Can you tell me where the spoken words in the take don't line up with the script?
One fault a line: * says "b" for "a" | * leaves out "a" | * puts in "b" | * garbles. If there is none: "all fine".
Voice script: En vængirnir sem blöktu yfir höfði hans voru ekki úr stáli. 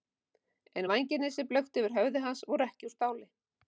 all fine